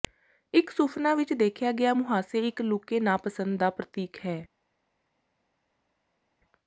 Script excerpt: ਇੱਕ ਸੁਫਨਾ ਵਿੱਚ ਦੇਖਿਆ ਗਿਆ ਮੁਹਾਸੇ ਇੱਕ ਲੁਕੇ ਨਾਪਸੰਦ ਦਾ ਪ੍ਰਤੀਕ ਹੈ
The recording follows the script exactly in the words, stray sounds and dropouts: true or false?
true